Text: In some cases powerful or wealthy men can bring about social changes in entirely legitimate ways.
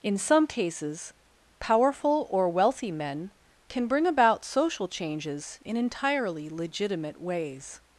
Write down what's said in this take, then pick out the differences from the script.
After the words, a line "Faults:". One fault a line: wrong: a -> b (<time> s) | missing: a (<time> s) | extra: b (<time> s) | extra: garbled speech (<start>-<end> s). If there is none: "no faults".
In some cases powerful or wealthy men can bring about social changes in entirely legitimate ways.
Faults:
no faults